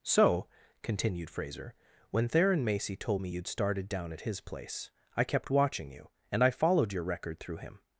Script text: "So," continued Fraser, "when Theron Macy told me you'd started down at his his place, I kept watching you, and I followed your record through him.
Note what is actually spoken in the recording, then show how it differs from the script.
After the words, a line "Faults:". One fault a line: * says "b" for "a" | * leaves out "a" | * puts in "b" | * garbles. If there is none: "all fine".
"So," continued Fraser, "when Theron Macy told me you'd started down at his place, I kept watching you, and I followed your record through him.
Faults:
* leaves out "his"